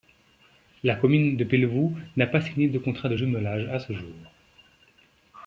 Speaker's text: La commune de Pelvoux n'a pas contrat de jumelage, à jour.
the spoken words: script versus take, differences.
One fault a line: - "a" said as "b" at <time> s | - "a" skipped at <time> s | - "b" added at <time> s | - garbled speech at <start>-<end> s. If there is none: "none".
- "signé de" added at 2.4 s
- "ce" added at 3.8 s